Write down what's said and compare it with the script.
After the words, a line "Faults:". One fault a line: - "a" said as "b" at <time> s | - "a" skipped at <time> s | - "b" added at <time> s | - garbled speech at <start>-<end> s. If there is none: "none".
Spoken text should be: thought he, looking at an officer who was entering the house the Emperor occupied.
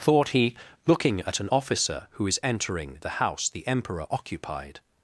thought he, looking at an officer who is entering the house the Emperor occupied.
Faults:
- "was" said as "is" at 2.3 s